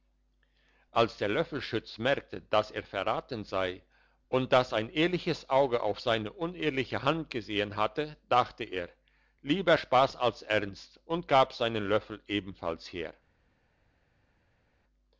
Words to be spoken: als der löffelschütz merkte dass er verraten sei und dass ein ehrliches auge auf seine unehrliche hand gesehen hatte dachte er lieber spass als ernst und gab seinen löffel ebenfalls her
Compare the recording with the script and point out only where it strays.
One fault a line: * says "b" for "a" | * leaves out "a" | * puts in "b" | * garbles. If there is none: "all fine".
all fine